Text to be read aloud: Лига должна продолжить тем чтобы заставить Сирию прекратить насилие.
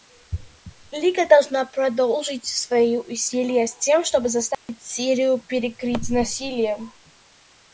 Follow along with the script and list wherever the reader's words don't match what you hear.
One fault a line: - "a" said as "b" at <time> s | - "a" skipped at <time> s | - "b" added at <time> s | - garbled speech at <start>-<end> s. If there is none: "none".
- "свои усилия с" added at 2.5 s